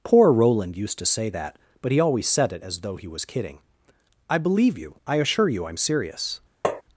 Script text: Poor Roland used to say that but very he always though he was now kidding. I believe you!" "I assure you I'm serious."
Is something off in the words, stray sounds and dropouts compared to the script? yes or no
yes